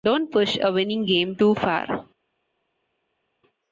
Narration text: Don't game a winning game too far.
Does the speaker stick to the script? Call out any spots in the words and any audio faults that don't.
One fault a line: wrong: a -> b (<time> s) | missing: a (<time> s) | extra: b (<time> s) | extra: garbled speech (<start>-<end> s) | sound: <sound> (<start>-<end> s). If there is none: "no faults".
wrong: game -> push (0.3 s)